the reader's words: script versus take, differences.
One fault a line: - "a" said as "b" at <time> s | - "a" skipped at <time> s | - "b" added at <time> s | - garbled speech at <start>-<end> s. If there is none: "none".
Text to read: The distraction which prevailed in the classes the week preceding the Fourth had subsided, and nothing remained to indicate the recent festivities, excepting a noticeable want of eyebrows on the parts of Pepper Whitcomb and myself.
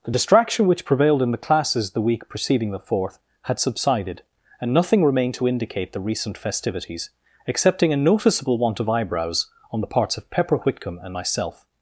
none